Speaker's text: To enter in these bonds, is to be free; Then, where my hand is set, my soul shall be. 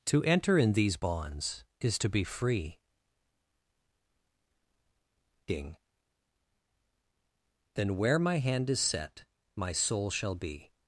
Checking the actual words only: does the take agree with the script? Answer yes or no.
no